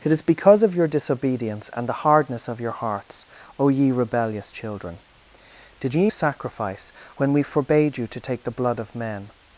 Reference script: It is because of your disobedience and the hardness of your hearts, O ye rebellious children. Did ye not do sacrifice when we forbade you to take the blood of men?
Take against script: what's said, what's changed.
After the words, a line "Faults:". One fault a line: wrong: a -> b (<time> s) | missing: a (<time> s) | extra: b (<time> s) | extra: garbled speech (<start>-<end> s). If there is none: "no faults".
It is because of your disobedience and the hardness of your hearts, O ye rebellious children. Did ye sacrifice when we forbade you to take the blood of men?
Faults:
missing: not do (6.1 s)